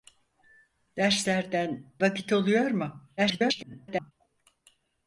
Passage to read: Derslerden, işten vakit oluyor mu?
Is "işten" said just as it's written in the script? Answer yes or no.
no